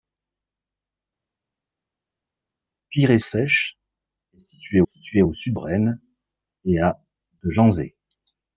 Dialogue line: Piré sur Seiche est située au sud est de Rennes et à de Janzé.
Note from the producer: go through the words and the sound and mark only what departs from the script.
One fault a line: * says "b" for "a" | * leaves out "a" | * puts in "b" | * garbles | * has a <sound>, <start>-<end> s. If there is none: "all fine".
* leaves out "sur"
* puts in "située"
* leaves out "est de"